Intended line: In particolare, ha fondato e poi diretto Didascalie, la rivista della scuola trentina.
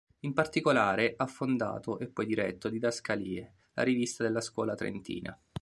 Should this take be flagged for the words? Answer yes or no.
no